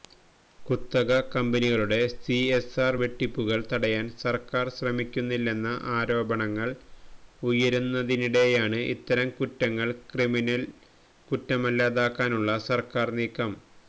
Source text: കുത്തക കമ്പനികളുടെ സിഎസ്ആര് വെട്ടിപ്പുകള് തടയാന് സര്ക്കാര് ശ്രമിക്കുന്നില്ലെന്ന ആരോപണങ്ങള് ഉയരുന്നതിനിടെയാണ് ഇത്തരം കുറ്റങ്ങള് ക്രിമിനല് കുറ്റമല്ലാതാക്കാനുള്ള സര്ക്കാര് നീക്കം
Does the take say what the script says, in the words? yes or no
yes